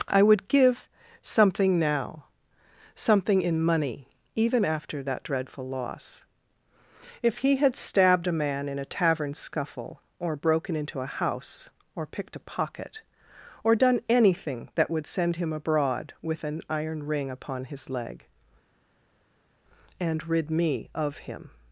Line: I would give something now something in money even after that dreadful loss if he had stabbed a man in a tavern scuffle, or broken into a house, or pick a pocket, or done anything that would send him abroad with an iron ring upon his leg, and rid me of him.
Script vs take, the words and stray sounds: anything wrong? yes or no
yes